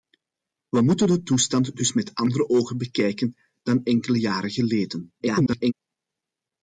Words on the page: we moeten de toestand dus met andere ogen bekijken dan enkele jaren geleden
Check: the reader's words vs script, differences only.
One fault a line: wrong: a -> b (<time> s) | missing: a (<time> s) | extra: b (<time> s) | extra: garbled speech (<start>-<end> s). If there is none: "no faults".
extra: garbled speech (5.2-5.7 s)